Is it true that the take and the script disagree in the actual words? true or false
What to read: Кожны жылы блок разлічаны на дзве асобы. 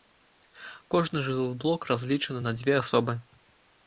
false